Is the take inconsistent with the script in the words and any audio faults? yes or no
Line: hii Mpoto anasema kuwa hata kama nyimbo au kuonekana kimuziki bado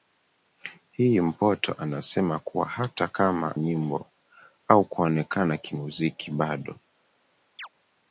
yes